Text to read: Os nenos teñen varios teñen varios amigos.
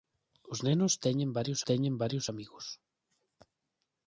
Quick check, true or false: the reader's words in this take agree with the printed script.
true